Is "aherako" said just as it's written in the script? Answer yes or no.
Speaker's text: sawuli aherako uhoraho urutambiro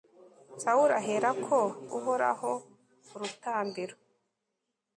yes